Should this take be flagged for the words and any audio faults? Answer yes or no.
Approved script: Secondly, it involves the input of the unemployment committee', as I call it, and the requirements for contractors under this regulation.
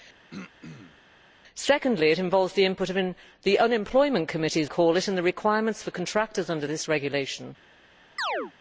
yes